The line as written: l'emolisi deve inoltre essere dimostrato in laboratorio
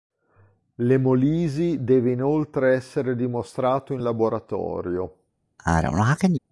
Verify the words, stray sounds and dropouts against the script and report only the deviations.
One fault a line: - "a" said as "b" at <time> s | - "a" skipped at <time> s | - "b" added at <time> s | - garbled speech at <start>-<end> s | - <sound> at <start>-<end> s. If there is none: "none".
- sneeze at 5.6-6.4 s